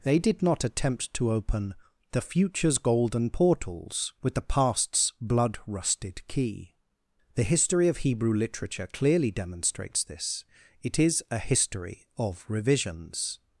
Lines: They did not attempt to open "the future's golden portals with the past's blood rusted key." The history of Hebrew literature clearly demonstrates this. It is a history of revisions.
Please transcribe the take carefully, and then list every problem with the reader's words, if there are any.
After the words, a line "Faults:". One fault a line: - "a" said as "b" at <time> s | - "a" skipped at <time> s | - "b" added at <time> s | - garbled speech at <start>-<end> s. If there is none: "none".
They did not attempt to open "the future's golden portals with the past's blood rusted key." The history of Hebrew literature clearly demonstrates this. It is a history of revisions.
Faults:
none